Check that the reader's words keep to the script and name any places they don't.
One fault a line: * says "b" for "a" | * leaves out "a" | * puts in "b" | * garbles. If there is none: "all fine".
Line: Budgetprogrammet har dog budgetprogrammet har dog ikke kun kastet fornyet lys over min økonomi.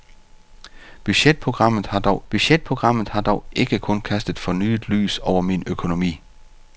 all fine